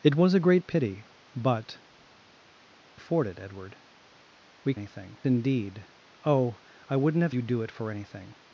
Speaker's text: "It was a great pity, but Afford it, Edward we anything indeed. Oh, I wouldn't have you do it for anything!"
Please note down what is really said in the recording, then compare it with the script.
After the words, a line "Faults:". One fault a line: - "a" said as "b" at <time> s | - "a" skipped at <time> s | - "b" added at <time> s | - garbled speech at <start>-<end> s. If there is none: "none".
"It was a great pity, but Afford it, Edward we anything indeed. Oh, I wouldn't have you do it for anything!"
Faults:
none